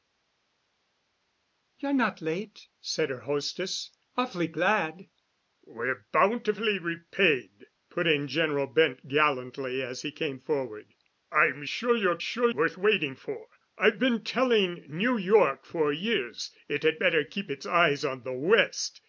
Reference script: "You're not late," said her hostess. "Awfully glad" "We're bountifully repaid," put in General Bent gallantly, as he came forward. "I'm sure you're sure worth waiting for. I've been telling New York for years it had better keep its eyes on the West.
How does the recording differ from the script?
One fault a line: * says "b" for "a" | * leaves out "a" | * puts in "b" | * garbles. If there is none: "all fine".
all fine